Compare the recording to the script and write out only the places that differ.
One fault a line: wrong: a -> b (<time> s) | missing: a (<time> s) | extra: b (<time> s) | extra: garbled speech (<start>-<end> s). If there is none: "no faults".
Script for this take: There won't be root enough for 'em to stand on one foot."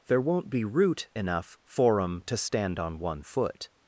no faults